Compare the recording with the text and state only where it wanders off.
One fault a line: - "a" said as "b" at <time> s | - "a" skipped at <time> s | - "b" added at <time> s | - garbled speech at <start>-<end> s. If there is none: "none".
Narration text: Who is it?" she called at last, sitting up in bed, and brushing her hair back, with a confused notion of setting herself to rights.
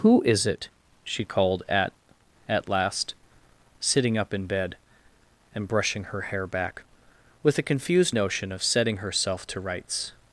- "at" added at 2.5 s